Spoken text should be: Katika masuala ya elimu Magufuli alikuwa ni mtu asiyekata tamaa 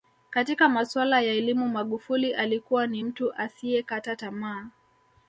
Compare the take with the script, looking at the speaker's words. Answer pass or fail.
pass